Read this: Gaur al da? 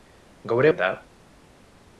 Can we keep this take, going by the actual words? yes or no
yes